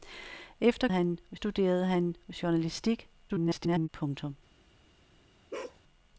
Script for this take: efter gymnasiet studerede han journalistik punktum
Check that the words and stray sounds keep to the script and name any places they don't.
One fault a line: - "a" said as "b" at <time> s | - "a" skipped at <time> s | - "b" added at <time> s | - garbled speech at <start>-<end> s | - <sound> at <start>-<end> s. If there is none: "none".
- "gymnasiet" said as "han" at 0.9 s
- garbled speech at 3.3-3.9 s
- bark at 5.5-5.8 s